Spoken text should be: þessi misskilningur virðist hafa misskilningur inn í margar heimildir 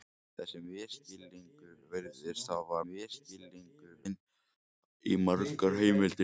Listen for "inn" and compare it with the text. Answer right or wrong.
right